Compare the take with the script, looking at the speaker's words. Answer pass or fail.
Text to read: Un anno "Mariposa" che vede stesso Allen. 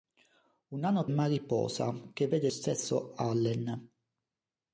pass